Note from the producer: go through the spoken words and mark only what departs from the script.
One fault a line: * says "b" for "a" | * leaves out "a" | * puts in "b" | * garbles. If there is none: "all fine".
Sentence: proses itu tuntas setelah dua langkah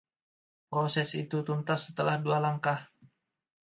all fine